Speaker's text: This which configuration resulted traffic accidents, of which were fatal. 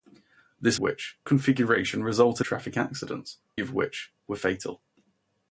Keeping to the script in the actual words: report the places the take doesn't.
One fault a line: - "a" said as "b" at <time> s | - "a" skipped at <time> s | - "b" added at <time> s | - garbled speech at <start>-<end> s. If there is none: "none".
none